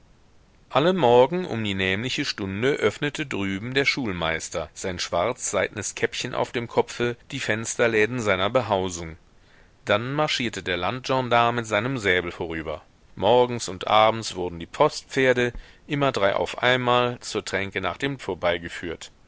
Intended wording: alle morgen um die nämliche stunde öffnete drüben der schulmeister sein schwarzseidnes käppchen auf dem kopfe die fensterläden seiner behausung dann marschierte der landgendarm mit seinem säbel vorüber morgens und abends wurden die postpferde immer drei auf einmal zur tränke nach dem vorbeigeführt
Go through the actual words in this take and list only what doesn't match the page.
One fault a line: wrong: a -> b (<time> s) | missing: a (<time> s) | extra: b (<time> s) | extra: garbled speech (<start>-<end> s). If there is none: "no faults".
no faults